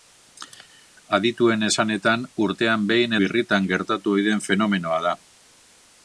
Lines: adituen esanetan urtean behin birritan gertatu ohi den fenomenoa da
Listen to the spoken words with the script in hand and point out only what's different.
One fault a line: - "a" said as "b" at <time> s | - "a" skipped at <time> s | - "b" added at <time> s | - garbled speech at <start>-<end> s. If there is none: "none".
none